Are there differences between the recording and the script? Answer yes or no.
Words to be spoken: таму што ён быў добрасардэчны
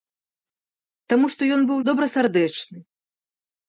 no